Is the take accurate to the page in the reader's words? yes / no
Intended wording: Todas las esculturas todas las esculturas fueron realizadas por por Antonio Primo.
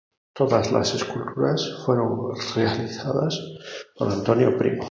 no